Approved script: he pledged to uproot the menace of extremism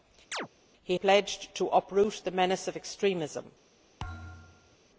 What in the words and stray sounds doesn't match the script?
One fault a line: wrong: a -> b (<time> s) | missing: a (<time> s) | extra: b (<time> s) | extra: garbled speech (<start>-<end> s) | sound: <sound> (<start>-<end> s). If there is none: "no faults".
sound: chirp (0.3-0.5 s)
sound: thud (4.0-4.8 s)